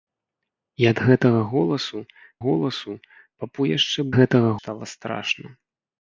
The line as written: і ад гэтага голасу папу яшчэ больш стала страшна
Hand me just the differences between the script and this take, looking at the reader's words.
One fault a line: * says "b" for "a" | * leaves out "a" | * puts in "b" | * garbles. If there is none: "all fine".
* puts in "голасу"
* says "гэтага" for "больш"